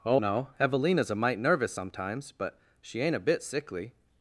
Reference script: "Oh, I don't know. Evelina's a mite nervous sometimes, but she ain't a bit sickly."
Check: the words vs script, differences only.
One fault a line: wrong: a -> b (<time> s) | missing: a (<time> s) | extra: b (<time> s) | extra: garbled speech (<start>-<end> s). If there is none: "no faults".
missing: I don't (0.2 s)